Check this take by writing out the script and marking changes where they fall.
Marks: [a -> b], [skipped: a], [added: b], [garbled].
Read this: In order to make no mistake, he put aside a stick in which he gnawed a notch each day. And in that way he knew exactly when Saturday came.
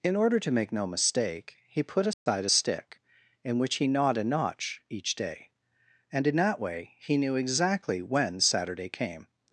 In order to make no mistake, he put aside a stick in which he gnawed a notch each day. And in that way he knew exactly when Saturday came.